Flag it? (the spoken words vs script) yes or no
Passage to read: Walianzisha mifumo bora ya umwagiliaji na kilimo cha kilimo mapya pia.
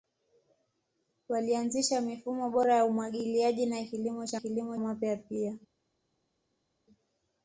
no